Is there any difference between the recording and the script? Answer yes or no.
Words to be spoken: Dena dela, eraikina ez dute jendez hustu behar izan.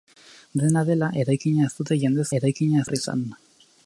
yes